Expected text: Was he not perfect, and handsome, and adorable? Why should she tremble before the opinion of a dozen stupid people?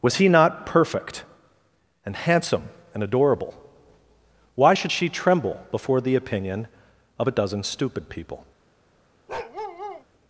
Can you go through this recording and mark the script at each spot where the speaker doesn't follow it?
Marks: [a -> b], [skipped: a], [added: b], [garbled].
Was he not perfect, and handsome, and adorable? Why should she tremble before the opinion of a dozen stupid people?